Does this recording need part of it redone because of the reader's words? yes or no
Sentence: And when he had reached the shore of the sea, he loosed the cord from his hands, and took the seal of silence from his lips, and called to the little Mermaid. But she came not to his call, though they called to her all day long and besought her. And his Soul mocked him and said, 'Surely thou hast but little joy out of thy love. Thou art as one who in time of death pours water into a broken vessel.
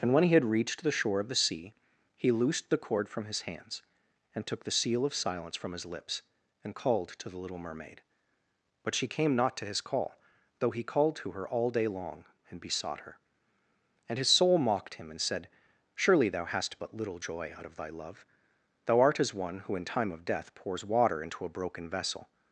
yes